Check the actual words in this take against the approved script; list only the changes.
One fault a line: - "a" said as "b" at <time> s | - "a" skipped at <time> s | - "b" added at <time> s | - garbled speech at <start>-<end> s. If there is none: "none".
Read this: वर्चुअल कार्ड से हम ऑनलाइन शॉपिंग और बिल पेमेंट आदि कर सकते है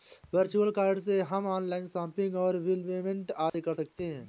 none